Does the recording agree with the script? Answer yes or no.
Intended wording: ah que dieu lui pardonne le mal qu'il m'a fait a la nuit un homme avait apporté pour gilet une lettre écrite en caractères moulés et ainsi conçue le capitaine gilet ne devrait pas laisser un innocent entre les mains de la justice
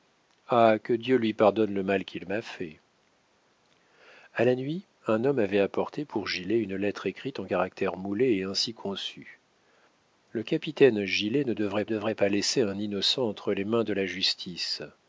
no